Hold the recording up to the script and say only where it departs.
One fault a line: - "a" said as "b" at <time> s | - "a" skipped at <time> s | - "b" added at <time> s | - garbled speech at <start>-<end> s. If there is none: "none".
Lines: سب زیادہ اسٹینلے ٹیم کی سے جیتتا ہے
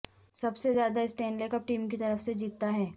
- "سے" added at 0.6 s
- "کپ" added at 1.5 s
- "طرف" added at 2.0 s